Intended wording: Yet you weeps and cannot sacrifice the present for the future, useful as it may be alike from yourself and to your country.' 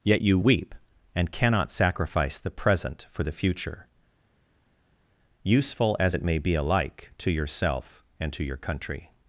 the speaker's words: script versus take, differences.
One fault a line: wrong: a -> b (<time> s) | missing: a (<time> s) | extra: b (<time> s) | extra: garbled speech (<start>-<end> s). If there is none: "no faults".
wrong: weeps -> weep (0.4 s)
wrong: from -> to (7.2 s)